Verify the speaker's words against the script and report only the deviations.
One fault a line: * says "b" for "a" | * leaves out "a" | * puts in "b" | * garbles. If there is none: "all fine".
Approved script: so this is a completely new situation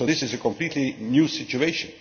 all fine